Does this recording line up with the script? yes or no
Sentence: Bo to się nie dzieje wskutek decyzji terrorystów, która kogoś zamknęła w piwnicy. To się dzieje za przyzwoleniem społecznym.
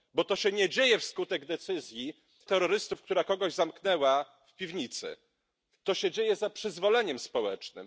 yes